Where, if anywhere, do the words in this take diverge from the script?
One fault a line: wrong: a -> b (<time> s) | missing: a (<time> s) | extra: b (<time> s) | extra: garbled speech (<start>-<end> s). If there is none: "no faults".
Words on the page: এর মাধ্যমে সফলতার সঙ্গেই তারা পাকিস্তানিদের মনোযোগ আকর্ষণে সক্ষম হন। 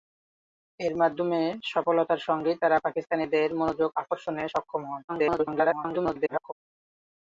extra: garbled speech (5.1-6.5 s)